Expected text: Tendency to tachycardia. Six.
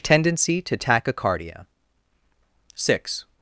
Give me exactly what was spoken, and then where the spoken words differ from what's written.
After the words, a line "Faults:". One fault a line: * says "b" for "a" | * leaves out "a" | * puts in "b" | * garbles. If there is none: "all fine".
Tendency to tachycardia. Six.
Faults:
all fine